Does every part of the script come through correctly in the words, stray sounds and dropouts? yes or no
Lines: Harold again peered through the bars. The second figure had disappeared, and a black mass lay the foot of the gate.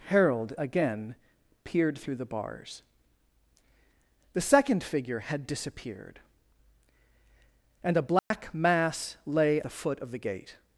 no